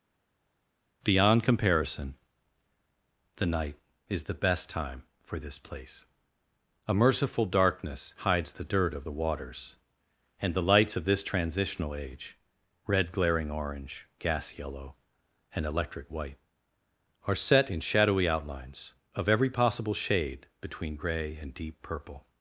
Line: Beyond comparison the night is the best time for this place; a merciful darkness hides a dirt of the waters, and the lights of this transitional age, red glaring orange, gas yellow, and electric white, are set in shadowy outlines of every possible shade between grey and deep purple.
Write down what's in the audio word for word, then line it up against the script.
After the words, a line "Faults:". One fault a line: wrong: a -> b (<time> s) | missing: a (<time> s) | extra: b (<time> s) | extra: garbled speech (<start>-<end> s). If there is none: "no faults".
Beyond comparison the night is the best time for this place; a merciful darkness hides the dirt of the waters, and the lights of this transitional age, red glaring orange, gas yellow, and electric white, are set in shadowy outlines of every possible shade between grey and deep purple.
Faults:
wrong: a -> the (8.5 s)